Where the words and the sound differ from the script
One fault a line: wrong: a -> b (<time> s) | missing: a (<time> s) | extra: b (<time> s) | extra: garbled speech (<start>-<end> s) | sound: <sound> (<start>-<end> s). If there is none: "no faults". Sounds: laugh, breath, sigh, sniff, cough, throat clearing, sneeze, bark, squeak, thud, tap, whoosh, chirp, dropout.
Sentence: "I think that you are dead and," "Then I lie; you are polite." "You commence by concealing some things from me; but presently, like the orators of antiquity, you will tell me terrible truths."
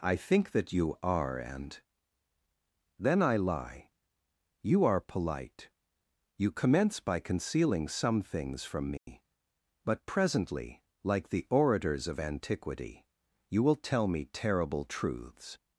missing: dead (1.4 s)
sound: dropout (9.0-9.1 s)